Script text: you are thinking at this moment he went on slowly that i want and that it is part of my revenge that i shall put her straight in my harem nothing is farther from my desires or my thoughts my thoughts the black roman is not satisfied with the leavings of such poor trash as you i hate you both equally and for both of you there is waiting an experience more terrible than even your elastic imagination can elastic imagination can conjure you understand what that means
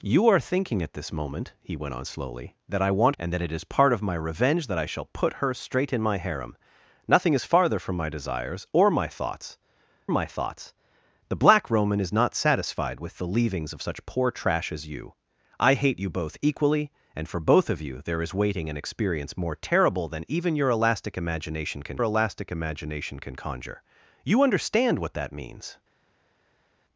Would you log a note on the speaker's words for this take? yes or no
no